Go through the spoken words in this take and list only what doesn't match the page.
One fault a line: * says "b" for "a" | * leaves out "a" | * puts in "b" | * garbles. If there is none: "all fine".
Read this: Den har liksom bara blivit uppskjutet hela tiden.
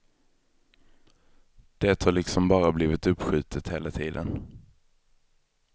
* says "Det" for "Den"